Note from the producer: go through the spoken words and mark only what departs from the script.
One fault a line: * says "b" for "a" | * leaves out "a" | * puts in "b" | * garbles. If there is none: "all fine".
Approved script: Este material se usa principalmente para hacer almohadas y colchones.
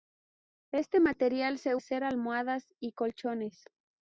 * leaves out "usa principalmente para"